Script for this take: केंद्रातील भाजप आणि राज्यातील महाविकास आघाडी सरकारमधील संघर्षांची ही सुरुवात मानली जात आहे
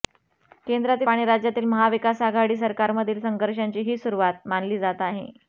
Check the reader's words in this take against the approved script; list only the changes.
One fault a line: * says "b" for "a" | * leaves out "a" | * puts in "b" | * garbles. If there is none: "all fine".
* leaves out "भाजप"